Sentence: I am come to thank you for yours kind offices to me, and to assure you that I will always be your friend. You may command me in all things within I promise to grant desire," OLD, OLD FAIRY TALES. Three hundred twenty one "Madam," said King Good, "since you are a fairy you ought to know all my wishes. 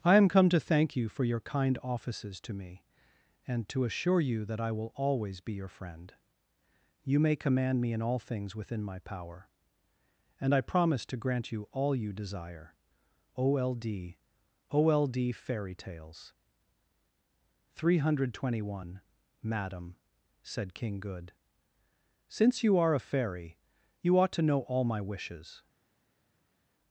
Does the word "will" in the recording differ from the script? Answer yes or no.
no